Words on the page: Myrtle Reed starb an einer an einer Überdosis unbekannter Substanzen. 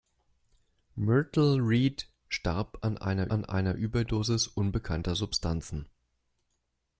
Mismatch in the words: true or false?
false